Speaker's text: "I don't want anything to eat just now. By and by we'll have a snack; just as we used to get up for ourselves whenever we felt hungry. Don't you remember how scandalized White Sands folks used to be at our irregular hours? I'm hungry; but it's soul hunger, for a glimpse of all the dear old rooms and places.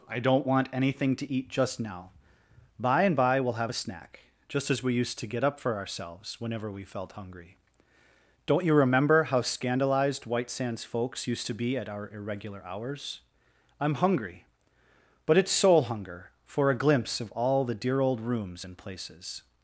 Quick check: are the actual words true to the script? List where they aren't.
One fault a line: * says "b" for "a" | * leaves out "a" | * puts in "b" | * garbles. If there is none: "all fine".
all fine